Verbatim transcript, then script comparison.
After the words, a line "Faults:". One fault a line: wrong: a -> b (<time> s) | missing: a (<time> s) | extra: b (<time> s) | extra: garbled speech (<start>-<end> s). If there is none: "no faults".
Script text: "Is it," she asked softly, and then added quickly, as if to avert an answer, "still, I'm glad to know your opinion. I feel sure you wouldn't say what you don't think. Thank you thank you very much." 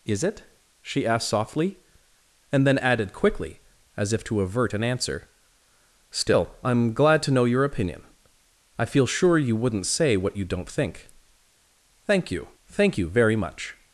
"Is it," she asked softly, and then added quickly, as if to avert an answer, "still, I'm glad to know your opinion. I feel sure you wouldn't say what you don't think. Thank you thank you very much."
Faults:
no faults